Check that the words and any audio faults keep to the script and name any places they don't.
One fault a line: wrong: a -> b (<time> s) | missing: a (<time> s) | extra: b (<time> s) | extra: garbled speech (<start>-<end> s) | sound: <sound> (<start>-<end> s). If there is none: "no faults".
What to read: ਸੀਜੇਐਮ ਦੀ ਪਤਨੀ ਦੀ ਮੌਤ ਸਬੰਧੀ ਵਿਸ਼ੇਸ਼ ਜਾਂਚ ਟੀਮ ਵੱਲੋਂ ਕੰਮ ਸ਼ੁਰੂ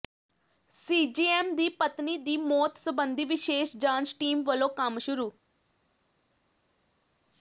no faults